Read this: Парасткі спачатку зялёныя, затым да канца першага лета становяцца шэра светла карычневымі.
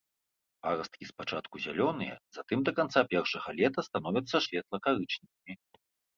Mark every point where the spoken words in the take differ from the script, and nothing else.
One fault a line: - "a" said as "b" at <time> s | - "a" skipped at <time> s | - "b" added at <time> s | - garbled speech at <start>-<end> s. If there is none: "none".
- "шэра" skipped at 4.4 s